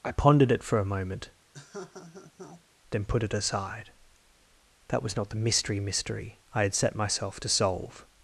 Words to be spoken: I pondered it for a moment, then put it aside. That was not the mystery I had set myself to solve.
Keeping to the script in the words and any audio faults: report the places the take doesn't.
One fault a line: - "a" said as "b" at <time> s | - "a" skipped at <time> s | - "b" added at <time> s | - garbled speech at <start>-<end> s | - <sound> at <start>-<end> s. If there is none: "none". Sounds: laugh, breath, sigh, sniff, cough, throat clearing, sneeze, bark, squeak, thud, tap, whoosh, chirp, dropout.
- laugh at 1.5-2.6 s
- "mystery" added at 5.8 s